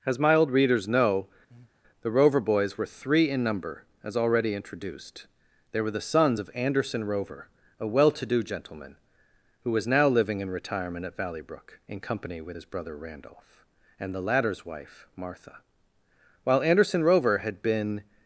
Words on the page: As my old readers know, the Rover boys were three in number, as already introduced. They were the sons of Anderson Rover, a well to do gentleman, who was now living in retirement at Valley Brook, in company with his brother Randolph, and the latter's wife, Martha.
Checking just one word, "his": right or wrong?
right